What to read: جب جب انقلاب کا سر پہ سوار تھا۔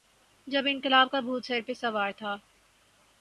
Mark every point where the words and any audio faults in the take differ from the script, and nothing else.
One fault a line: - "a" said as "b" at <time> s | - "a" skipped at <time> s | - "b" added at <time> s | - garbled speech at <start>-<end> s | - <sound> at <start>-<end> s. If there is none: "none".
- "جب" skipped at 0.6 s
- "بھوت" added at 1.2 s